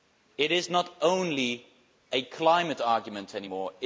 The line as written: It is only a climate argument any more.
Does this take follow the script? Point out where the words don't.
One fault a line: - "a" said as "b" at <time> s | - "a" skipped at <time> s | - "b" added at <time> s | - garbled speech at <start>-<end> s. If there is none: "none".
- "not" added at 0.7 s